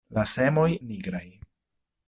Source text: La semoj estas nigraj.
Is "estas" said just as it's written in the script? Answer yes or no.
no